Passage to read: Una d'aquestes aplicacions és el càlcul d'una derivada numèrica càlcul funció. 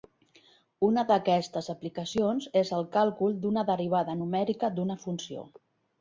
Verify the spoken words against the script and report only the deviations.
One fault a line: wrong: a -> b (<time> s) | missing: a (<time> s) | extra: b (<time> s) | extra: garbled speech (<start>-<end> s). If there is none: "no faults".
wrong: càlcul -> d'una (4.8 s)